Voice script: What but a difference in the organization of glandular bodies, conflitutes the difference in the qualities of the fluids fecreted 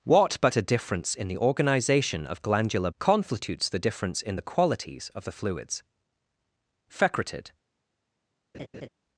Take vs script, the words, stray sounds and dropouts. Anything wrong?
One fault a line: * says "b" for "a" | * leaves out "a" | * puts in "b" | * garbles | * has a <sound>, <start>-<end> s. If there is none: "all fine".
* leaves out "bodies"
* has a laugh, 8.5-8.9 s